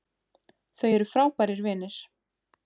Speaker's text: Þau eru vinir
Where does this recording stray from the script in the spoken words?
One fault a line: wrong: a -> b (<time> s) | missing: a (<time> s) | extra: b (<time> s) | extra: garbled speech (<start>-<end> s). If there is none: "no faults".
extra: frábærir (1.1 s)